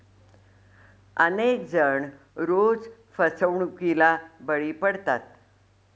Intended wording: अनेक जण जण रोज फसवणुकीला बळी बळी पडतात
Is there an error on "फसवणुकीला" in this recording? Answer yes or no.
no